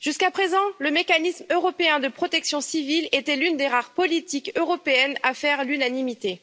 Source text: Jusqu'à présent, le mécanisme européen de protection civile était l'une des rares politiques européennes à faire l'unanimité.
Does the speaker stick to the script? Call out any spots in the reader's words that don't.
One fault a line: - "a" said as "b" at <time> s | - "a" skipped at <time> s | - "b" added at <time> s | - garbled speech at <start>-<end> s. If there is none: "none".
none